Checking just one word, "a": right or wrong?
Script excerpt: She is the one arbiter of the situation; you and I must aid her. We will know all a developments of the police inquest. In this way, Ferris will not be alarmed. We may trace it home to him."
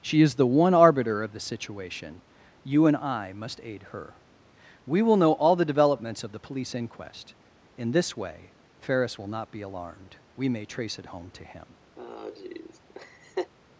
wrong